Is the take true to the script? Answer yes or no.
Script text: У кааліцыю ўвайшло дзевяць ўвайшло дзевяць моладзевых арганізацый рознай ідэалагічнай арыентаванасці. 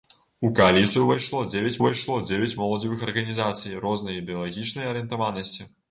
yes